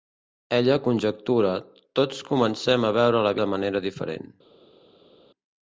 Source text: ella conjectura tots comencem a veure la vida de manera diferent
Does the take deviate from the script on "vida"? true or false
true